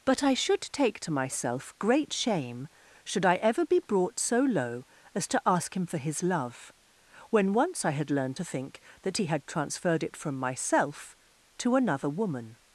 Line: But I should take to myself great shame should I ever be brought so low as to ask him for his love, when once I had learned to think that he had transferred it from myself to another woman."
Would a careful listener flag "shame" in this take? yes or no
no